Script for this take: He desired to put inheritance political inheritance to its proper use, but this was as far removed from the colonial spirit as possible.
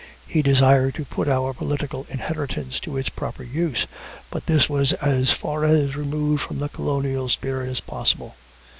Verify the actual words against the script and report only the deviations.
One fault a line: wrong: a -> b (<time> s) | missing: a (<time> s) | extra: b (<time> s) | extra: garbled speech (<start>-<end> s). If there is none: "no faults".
wrong: inheritance -> our (1.3 s)